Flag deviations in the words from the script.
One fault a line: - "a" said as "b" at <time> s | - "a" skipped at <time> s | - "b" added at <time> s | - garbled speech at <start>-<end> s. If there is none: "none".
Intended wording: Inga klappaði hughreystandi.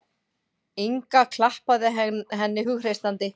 - "henni" added at 2.0 s